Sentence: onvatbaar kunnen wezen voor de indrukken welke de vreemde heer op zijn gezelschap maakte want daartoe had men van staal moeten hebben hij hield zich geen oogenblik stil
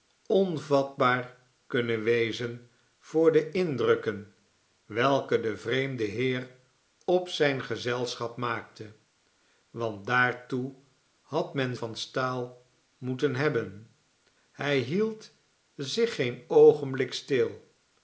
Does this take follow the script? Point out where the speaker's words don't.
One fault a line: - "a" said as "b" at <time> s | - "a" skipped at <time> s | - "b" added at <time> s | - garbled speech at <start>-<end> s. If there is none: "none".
none